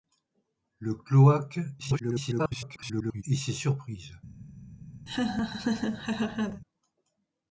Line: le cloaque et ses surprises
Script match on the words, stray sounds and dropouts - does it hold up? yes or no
no